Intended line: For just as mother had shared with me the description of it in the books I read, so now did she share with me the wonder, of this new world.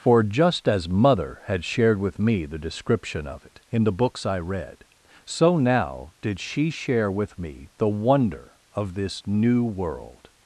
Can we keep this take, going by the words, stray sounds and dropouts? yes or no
yes